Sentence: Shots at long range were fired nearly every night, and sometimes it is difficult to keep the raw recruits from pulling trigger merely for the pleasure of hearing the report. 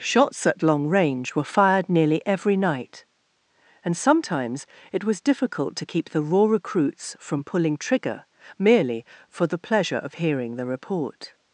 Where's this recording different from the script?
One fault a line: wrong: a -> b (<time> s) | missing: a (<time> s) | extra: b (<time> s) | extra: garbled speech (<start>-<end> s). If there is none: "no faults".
wrong: is -> was (5.0 s)